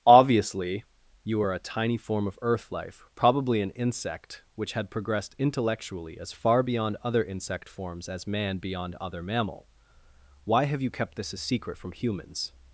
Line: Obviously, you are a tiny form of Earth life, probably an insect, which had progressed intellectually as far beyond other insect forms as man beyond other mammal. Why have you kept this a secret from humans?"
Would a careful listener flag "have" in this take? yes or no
no